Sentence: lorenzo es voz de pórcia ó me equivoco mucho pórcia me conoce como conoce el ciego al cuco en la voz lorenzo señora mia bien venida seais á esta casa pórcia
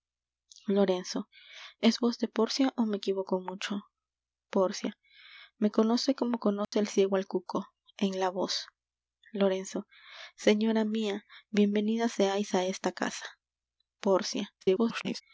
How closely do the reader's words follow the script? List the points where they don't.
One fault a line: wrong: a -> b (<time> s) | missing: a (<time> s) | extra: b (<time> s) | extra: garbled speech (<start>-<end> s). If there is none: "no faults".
extra: garbled speech (14.6-15.2 s)